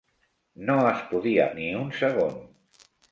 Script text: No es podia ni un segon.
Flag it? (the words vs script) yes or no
no